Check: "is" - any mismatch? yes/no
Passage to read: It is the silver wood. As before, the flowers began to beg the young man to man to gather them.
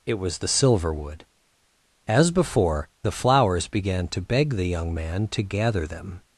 yes